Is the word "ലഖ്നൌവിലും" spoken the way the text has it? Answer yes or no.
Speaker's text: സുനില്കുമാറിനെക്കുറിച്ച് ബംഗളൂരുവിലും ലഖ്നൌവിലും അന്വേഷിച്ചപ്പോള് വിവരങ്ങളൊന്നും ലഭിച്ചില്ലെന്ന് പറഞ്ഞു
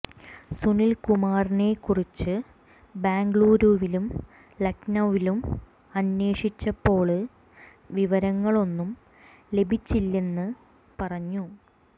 yes